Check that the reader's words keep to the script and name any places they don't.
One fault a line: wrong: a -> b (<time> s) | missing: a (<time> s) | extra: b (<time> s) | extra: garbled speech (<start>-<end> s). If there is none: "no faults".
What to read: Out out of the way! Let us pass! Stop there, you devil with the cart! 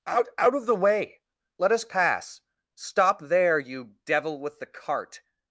no faults